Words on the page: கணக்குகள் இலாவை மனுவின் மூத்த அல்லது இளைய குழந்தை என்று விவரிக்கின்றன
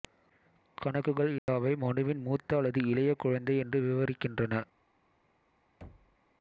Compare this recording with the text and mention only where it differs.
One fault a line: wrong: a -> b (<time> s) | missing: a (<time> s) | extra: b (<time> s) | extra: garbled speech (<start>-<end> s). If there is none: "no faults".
no faults